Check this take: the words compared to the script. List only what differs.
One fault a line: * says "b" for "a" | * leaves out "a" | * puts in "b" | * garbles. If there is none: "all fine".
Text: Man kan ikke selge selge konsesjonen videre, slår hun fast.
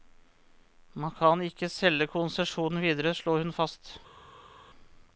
* leaves out "selge"